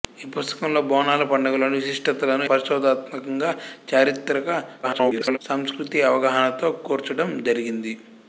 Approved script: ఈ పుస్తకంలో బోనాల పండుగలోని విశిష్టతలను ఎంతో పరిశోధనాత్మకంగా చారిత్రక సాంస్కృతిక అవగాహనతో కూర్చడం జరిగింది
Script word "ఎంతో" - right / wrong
wrong